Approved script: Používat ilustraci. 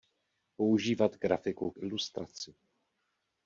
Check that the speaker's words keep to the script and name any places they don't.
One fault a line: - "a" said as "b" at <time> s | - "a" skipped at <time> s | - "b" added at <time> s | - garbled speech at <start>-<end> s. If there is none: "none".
- "grafiku k" added at 1.2 s